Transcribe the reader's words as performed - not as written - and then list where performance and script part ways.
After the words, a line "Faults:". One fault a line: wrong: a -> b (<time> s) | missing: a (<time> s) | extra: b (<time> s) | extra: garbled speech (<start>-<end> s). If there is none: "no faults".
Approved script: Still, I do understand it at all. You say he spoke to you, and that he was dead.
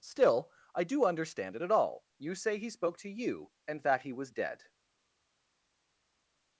Still, I do understand it at all. You say he spoke to you, and that he was dead.
Faults:
no faults